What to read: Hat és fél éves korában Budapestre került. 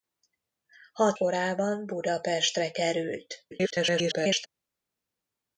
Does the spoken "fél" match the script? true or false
false